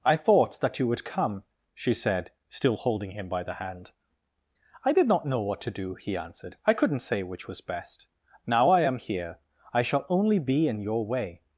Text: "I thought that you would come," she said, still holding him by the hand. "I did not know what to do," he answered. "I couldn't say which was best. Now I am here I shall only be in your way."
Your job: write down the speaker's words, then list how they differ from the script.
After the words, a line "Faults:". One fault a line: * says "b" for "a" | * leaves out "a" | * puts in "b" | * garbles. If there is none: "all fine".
"I thought that you would come," she said, still holding him by the hand. "I did not know what to do," he answered. "I couldn't say which was best. Now I am here I shall only be in your way."
Faults:
all fine